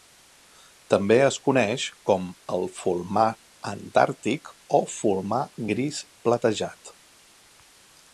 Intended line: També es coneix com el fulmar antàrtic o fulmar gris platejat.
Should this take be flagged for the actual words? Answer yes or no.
no